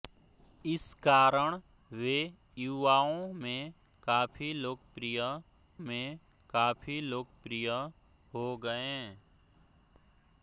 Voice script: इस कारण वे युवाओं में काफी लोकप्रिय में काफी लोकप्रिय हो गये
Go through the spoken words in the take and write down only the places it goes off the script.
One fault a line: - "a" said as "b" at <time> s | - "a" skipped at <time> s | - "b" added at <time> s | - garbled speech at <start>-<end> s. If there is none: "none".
none